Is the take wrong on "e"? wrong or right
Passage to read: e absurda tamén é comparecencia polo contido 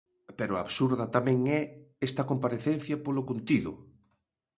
wrong